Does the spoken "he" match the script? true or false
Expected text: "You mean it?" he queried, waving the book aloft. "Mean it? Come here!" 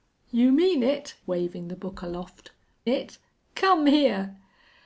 false